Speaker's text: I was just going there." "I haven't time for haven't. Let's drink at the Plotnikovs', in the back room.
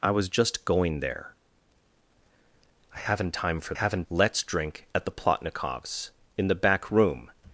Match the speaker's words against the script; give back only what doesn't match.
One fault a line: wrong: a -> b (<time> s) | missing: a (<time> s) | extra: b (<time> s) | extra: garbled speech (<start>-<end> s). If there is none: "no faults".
no faults